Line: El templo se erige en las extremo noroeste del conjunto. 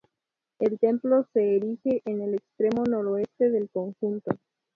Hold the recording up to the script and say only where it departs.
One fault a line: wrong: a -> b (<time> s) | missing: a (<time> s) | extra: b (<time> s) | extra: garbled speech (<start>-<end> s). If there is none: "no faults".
wrong: las -> el (2.2 s)